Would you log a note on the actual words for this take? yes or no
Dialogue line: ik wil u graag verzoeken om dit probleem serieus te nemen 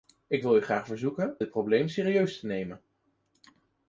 yes